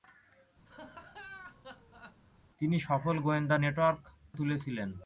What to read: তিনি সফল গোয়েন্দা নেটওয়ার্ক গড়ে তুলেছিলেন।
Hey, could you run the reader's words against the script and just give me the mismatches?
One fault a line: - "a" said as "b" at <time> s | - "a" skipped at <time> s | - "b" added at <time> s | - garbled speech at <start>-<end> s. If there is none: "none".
- "গড়ে" skipped at 4.0 s